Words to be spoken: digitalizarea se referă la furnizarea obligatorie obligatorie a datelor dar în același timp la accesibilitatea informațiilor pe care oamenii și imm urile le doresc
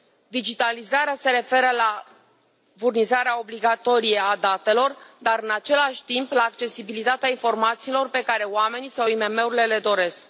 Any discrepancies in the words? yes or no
yes